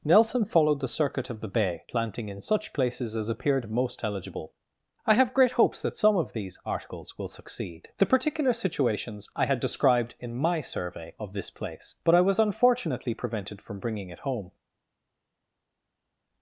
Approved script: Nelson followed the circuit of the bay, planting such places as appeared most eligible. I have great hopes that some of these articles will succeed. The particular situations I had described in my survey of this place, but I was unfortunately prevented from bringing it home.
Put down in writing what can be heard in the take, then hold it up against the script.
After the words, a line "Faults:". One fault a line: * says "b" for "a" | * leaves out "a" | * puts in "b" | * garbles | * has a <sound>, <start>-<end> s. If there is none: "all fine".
Nelson followed the circuit of the bay, planting in such places as appeared most eligible. I have great hopes that some of these articles will succeed. The particular situations I had described in my survey of this place, but I was unfortunately prevented from bringing it home.
Faults:
* puts in "in"